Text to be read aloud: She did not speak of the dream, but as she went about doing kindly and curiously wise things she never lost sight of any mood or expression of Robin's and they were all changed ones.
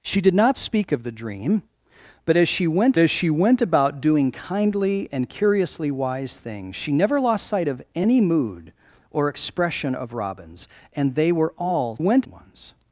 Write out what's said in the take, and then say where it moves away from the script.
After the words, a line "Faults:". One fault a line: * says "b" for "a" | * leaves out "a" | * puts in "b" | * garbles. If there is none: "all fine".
She did not speak of the dream, but as she went as she went about doing kindly and curiously wise things she never lost sight of any mood or expression of Robin's and they were all went ones.
Faults:
* puts in "as she went"
* says "went" for "changed"